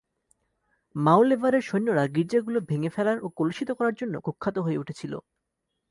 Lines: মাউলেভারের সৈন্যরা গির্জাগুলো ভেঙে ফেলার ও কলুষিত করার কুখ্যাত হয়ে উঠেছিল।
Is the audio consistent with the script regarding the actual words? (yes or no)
no